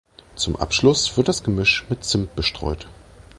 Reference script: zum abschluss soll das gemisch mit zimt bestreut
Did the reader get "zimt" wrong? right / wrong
right